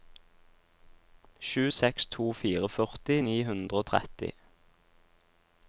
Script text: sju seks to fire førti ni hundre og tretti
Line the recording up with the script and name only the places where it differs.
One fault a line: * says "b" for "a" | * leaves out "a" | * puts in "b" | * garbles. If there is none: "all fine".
all fine